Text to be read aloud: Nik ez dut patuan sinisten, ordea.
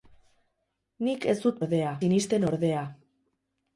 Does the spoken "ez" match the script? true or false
true